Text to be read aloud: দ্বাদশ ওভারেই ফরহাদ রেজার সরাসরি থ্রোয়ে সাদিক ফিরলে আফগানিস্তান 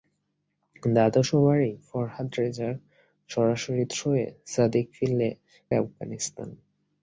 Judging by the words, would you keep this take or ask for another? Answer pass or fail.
pass